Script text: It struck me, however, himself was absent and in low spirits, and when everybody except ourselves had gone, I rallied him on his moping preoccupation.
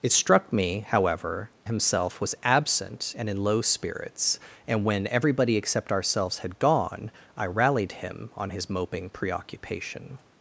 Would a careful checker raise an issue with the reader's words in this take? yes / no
no